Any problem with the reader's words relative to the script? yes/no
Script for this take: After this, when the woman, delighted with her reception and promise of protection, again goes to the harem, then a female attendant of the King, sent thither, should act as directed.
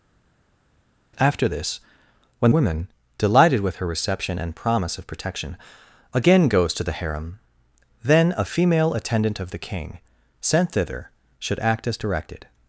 yes